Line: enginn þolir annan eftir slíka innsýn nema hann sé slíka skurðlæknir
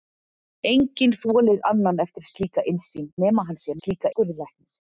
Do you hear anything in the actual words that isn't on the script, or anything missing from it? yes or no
no